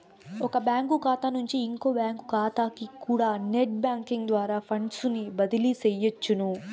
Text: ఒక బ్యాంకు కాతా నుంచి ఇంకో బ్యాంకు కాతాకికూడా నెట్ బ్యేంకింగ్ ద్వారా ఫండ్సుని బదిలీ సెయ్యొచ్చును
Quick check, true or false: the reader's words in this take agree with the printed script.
true